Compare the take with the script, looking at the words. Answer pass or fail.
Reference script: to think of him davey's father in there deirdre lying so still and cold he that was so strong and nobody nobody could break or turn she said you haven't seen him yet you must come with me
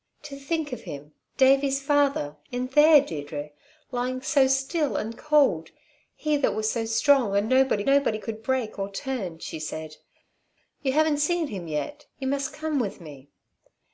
pass